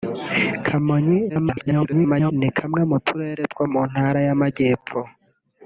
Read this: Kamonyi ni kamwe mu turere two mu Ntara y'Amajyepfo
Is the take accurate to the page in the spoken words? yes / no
no